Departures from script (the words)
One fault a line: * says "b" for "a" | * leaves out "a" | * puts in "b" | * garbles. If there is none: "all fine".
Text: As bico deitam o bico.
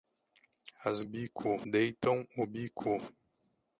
all fine